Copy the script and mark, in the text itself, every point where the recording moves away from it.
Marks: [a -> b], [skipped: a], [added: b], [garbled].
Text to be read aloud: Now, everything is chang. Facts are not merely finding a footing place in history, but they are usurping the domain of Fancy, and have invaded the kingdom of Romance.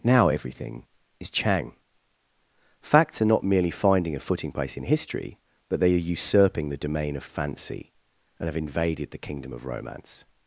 Now, everything is chang. Facts are not merely finding a footing place in history, but they are usurping the domain of Fancy, and have invaded the kingdom of Romance.